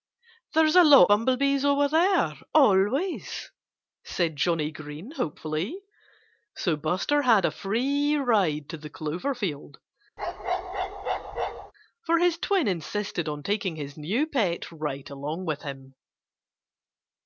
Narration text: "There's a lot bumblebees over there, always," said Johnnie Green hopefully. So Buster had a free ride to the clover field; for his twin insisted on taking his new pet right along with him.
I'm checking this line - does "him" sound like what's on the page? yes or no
yes